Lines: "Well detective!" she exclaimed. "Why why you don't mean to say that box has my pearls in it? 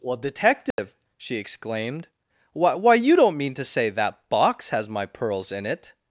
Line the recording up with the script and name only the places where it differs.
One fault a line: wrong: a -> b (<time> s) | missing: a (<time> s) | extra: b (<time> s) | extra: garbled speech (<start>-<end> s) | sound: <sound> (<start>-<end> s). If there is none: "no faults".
sound: dropout (0.7-0.8 s)